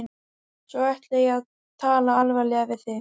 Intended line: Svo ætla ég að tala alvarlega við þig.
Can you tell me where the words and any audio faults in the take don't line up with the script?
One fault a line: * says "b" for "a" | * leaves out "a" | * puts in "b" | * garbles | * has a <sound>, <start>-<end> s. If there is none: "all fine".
all fine